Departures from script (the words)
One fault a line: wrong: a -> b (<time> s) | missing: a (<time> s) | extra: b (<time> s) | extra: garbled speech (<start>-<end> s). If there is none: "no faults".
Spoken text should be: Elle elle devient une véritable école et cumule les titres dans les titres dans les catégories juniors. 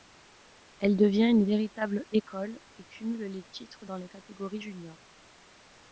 missing: elle (1.0 s)
missing: titres dans les (4.1 s)